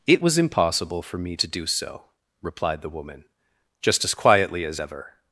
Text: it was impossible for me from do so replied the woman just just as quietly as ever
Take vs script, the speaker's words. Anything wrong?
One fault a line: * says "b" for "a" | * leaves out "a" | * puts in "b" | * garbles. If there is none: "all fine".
* says "to" for "from"
* leaves out "just"